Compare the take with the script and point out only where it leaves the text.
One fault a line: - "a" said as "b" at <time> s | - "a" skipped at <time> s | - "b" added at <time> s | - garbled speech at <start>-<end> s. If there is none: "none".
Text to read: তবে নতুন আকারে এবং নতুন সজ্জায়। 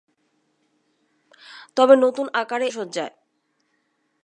- "এবং নতুন" skipped at 2.7 s